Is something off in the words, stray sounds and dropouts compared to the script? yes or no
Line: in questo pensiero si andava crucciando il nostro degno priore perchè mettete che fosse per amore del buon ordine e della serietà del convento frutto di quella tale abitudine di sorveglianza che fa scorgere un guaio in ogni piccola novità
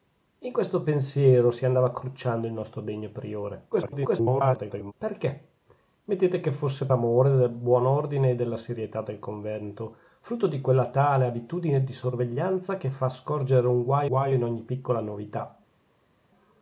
yes